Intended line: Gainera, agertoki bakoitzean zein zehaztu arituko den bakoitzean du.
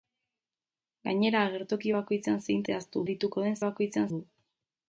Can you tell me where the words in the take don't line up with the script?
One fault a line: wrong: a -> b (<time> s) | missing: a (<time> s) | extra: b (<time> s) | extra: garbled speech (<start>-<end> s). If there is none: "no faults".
no faults